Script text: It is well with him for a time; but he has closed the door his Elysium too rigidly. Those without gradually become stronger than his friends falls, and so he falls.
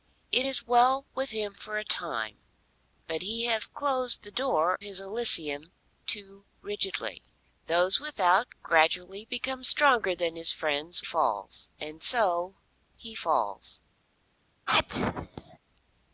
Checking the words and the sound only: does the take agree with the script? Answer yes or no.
no